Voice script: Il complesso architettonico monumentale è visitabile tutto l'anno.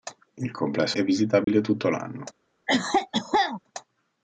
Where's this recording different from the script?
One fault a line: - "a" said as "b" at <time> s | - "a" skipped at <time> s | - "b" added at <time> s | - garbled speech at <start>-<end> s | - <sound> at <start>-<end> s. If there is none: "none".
- "architettonico monumentale" skipped at 1.0 s
- dropout at 1.4-1.5 s
- cough at 2.7-3.6 s